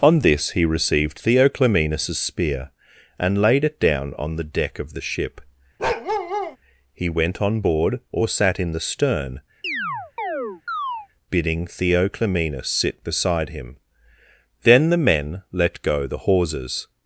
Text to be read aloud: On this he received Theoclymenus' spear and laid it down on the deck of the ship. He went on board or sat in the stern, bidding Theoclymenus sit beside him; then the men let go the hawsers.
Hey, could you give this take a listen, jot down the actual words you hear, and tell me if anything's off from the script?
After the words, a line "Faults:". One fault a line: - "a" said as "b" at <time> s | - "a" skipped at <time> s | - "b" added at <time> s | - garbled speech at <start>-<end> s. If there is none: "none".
On this he received Theoclymenus' spear and laid it down on the deck of the ship. He went on board or sat in the stern, bidding Theoclymenus sit beside him; then the men let go the hawsers.
Faults:
none